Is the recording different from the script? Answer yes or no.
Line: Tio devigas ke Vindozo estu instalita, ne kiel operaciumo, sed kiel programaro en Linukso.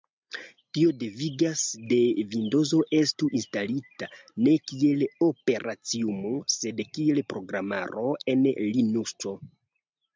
no